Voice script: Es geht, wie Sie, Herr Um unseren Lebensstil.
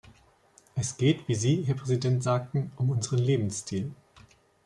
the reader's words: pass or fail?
fail